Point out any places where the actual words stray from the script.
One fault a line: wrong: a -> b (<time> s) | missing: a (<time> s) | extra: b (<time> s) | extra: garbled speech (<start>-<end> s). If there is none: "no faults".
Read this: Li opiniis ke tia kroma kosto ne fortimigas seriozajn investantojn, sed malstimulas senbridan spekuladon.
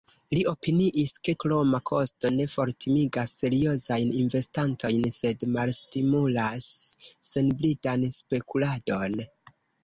missing: tia (1.4 s)